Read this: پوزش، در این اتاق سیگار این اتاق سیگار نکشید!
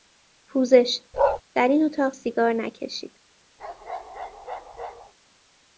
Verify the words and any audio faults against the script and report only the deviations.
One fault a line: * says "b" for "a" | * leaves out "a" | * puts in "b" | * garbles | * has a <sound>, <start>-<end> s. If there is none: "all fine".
* has a bark, 1.1-1.4 s
* leaves out "این اتاق سیگار"
* has a bark, 3.6-5.1 s